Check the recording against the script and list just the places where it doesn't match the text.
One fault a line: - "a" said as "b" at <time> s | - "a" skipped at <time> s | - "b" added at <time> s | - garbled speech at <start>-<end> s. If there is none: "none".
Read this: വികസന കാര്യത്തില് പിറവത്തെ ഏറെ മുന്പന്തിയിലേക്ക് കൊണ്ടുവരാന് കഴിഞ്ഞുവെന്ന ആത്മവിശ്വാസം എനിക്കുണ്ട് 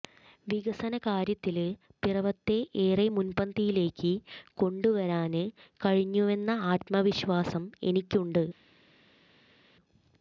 none